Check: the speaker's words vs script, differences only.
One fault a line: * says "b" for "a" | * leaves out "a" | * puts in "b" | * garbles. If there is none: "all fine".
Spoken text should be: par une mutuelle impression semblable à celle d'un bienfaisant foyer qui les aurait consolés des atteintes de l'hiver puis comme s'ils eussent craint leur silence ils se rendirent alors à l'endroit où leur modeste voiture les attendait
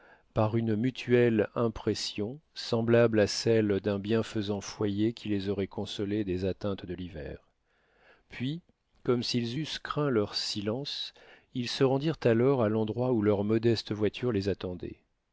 all fine